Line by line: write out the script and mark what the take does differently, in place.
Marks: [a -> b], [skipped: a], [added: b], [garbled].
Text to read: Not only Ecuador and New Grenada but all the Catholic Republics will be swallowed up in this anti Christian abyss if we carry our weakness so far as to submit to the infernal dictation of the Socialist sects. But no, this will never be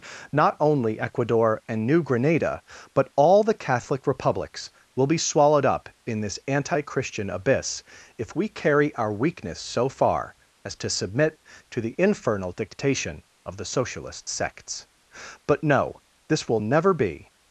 Not only Ecuador and New Grenada but all the Catholic Republics will be swallowed up in this anti Christian abyss if we carry our weakness so far as to submit to the infernal dictation of the Socialist sects. But no, this will never be